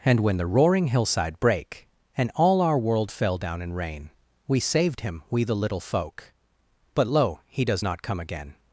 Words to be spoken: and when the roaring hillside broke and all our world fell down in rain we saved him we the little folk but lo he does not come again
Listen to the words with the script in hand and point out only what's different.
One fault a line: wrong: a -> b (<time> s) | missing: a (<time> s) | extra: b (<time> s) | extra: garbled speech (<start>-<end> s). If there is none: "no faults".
wrong: broke -> brake (1.4 s)